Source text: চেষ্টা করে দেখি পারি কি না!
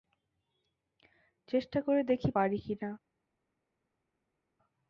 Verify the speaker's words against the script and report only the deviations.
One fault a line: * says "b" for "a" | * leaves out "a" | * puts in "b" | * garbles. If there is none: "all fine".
all fine